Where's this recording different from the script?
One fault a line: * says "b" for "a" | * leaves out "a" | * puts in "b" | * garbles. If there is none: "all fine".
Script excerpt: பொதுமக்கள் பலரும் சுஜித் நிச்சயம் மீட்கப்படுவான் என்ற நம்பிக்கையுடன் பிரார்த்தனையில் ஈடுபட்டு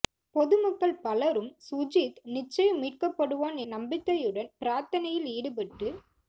* leaves out "என்ற"